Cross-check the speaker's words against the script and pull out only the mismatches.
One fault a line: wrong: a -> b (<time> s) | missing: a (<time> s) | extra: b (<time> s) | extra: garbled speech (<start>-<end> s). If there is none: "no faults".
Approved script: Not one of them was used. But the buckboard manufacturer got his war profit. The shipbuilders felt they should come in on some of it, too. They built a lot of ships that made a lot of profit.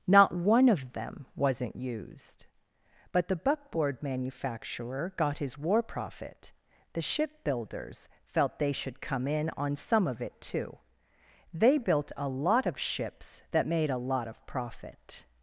wrong: was -> wasn't (1.4 s)